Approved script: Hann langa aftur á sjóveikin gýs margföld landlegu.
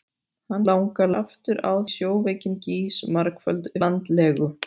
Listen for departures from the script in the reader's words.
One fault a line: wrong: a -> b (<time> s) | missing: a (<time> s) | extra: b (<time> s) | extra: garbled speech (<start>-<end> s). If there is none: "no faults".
no faults